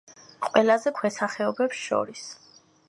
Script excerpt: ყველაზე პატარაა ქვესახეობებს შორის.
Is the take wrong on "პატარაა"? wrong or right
wrong